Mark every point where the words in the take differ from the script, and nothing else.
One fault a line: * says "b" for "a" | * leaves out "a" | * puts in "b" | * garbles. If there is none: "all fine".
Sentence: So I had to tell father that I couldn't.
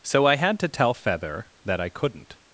* says "feather" for "father"